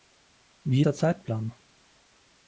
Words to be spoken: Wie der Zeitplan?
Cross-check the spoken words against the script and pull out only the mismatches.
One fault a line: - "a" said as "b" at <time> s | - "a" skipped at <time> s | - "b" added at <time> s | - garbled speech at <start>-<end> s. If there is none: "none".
none